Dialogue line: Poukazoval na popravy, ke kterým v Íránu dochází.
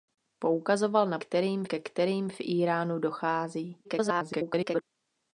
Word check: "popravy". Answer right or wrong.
wrong